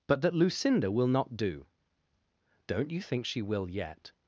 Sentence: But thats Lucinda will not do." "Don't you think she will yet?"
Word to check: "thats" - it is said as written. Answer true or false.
false